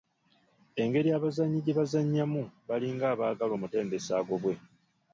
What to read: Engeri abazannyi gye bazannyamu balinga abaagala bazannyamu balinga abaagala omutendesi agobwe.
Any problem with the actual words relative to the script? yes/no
yes